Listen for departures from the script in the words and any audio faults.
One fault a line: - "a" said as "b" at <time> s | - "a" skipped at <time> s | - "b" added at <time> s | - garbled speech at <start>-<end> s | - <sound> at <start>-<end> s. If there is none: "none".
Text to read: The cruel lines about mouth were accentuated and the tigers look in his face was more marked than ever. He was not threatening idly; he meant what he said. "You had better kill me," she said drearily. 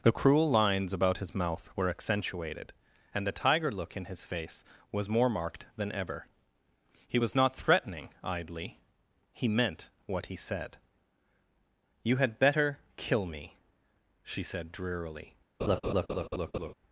- "his" added at 1.2 s
- "tigers" said as "tiger" at 3.4 s
- laugh at 15.6-16.7 s